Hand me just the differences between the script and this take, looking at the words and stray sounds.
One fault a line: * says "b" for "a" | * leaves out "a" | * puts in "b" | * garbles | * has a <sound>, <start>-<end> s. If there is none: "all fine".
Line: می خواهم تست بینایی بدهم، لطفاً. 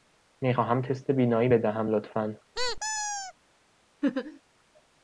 * has a squeak, 2.5-3.3 s
* has a laugh, 4.0-4.4 s